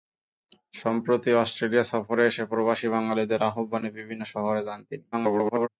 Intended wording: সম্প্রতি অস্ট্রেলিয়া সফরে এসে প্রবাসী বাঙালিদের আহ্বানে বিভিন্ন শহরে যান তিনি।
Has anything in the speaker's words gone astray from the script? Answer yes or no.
yes